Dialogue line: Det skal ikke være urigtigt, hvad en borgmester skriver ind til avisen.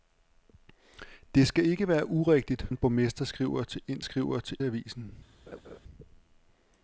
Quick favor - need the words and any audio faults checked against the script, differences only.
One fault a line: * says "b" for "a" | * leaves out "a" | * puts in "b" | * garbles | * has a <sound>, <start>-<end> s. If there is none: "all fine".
* leaves out "hvad"
* says "skriver" for "til"
* has a laugh, 5.5-5.8 s